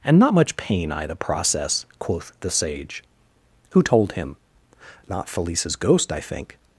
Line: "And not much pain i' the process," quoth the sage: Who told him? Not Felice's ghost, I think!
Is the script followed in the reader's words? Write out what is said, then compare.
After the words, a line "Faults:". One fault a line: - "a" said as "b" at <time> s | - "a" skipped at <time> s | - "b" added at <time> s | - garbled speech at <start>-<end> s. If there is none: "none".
"And not much pain i' the process," quoth the sage: Who told him? Not Felice's ghost, I think!
Faults:
none